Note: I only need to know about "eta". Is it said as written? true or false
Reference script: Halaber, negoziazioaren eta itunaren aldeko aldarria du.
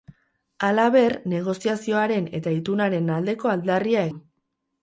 true